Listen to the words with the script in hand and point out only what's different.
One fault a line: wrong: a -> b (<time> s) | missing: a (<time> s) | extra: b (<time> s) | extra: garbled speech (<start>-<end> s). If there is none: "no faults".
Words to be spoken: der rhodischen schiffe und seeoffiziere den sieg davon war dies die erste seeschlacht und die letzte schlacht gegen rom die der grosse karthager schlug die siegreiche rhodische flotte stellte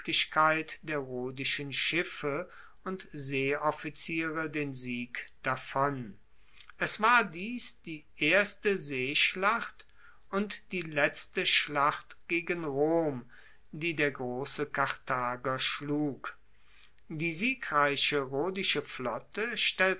extra: es (6.8 s)